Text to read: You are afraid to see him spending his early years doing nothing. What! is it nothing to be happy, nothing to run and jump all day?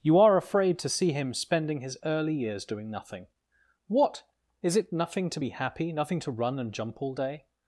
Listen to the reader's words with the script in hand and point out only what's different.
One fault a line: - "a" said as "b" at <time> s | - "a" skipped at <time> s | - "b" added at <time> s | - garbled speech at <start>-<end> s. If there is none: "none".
none